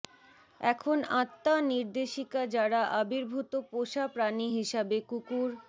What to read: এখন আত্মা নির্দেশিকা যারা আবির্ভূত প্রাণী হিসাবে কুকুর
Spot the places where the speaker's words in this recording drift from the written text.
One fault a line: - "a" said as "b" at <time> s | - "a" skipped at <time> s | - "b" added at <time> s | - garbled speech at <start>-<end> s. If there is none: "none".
- "পোষা" added at 3.7 s